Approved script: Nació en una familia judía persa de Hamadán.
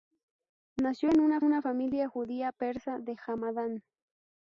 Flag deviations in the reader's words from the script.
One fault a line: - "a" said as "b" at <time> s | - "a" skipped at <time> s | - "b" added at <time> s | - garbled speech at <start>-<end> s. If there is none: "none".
- "una" added at 1.4 s